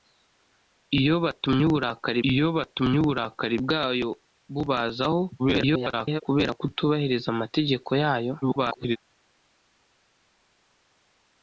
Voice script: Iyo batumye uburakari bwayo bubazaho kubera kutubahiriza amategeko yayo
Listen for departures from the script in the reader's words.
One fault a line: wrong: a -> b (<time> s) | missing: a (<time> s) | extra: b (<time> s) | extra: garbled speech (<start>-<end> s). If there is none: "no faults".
extra: iyo batumye uburakari (2.3 s)
extra: garbled speech (5.4-6.2 s)
extra: garbled speech (8.4-9.0 s)